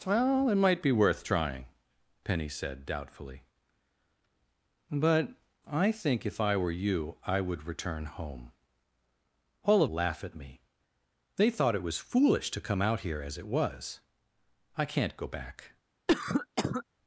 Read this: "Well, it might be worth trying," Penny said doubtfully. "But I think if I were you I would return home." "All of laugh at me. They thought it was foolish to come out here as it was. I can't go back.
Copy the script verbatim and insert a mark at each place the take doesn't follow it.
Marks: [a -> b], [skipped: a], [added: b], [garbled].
"Well, it might be worth trying," Penny said doubtfully. "But I think if I were you I would return home." "All of laugh at me. They thought it was foolish to come out here as it was. I can't go back.